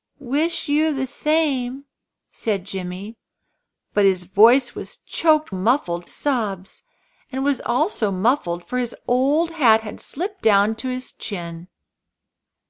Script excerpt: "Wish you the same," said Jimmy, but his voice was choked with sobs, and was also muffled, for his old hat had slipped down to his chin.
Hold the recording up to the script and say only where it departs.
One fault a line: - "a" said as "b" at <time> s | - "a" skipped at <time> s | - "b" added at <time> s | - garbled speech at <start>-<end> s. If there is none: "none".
- "with" said as "muffled" at 5.5 s